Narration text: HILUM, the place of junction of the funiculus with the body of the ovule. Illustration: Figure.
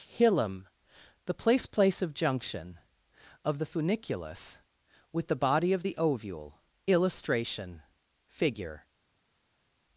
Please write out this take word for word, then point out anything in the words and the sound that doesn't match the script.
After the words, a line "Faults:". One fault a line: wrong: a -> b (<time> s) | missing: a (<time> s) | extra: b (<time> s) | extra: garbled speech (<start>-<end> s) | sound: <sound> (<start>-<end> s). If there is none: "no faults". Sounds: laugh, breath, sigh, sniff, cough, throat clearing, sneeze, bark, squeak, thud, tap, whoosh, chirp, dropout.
HILUM, the place place of junction of the funiculus with the body of the ovule. Illustration: Figure.
Faults:
extra: place (1.7 s)